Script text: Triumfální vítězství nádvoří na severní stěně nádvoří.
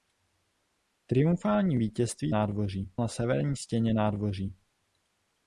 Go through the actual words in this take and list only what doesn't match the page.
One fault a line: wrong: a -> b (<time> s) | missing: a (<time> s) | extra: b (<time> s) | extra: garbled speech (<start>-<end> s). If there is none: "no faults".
no faults